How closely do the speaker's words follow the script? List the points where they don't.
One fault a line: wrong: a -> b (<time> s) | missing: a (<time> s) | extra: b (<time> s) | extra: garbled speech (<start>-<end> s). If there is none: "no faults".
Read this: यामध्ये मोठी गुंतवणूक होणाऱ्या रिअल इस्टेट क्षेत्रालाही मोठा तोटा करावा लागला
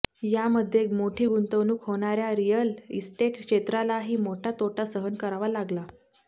extra: सहन (4.9 s)